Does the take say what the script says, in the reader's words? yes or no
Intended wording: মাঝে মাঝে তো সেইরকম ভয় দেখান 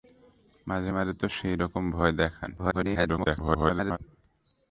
no